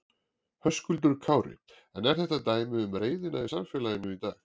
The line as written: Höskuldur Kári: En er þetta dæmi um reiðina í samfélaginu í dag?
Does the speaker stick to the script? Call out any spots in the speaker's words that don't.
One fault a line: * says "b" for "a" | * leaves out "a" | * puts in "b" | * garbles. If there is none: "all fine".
all fine